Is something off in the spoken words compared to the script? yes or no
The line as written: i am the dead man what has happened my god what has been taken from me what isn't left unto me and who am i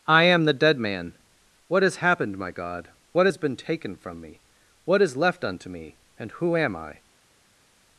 yes